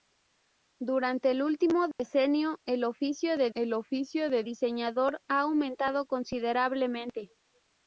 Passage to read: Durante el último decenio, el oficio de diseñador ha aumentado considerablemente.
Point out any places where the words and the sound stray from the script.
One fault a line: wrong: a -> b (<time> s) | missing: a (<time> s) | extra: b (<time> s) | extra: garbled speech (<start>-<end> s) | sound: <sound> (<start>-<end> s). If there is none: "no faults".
sound: dropout (1.9-2.0 s)
extra: el oficio de (3.5 s)